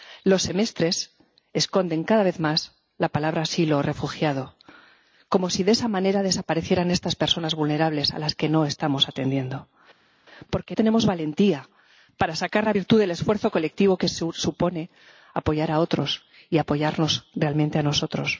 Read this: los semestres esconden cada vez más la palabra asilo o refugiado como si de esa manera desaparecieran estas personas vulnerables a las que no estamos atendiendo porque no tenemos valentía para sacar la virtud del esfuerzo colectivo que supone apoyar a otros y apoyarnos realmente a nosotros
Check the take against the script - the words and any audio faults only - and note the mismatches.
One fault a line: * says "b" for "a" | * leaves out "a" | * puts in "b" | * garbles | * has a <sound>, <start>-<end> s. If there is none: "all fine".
* leaves out "no"